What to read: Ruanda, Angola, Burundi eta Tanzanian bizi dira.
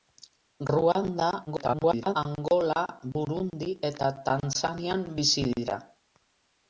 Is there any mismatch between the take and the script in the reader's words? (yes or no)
yes